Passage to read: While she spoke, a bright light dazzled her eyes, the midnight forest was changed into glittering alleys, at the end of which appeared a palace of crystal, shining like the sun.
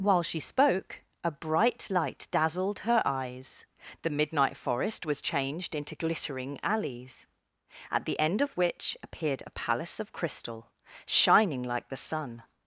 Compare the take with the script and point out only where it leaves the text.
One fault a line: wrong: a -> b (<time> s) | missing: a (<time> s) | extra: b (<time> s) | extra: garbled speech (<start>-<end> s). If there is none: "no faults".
no faults